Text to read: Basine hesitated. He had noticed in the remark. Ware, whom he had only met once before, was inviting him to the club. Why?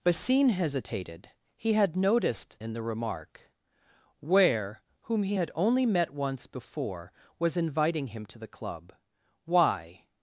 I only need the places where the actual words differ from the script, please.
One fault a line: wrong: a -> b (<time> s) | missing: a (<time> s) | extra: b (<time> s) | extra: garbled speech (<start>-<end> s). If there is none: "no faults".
no faults